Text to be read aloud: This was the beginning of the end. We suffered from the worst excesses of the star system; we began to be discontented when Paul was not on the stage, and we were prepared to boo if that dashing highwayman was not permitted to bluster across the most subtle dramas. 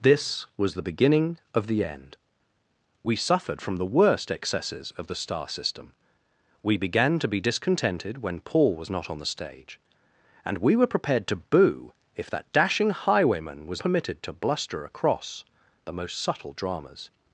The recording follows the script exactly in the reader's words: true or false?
false